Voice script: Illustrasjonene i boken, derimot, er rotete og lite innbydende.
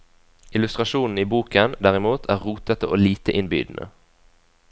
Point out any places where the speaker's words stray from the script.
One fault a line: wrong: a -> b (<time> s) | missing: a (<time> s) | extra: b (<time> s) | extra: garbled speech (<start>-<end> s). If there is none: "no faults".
no faults